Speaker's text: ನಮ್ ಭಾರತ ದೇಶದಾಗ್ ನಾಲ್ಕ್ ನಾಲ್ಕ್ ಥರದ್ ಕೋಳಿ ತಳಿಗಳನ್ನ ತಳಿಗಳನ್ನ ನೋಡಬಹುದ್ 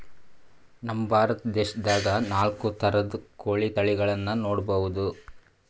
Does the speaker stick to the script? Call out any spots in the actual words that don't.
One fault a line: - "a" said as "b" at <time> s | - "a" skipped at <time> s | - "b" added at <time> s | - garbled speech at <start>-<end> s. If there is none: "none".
- "ನಾಲ್ಕ್" skipped at 2.6 s
- "ತಳಿಗಳನ್ನ" skipped at 4.4 s